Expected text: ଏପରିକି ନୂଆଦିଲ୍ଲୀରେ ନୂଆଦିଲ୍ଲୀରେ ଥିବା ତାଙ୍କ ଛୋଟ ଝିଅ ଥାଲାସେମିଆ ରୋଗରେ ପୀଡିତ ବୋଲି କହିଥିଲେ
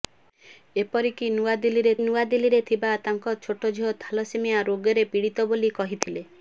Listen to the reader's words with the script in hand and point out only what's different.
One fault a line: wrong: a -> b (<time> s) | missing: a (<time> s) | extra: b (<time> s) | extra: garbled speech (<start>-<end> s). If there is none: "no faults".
no faults